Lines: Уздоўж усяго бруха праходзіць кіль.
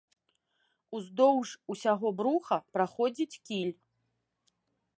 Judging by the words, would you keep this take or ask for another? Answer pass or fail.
pass